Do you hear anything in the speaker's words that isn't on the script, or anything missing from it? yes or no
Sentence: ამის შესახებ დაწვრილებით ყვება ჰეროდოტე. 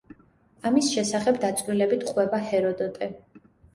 no